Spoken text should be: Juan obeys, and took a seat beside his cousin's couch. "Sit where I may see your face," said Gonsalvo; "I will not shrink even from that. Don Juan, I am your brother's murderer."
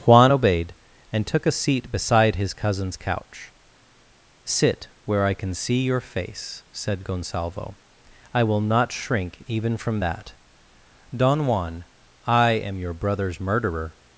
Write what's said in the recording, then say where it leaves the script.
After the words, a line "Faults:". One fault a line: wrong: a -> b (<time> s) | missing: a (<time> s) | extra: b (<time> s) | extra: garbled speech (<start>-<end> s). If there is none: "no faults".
Juan obeyed, and took a seat beside his cousin's couch. "Sit where I can see your face," said Gonsalvo; "I will not shrink even from that. Don Juan, I am your brother's murderer."
Faults:
wrong: obeys -> obeyed (0.3 s)
wrong: may -> can (5.3 s)